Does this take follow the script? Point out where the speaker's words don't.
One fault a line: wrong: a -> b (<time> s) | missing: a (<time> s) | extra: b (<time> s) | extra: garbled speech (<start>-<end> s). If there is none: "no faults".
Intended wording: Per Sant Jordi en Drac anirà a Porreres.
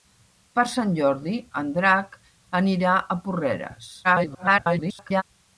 extra: garbled speech (4.0-5.2 s)